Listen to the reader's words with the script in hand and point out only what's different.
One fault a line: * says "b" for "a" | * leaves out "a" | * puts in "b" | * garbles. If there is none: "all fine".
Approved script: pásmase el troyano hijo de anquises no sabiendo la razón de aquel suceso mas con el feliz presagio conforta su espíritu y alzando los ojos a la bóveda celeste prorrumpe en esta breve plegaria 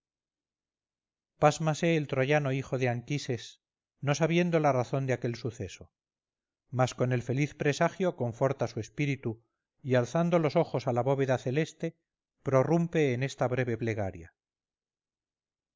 all fine